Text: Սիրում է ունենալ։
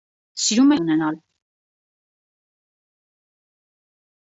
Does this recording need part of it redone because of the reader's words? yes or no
no